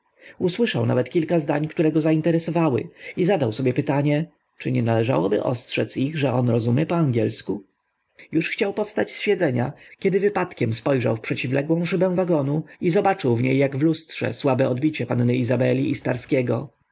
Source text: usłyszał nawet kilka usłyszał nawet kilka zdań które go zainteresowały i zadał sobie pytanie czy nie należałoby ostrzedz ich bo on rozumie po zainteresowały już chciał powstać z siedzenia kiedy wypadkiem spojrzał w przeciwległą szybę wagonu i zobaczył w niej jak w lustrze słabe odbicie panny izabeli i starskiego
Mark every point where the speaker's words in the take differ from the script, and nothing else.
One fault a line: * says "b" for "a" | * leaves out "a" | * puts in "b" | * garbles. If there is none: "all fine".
* leaves out "usłyszał nawet kilka"
* says "że" for "bo"
* says "angielsku" for "zainteresowały"